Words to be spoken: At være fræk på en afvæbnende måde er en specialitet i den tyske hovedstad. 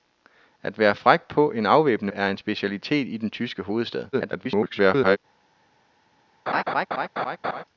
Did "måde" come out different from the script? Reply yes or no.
yes